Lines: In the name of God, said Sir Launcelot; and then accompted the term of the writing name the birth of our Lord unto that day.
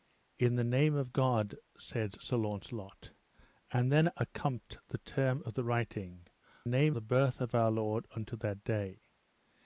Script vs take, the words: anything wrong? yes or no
no